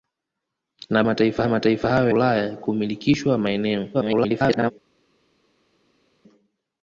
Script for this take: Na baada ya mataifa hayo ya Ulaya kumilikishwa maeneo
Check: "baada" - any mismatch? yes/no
yes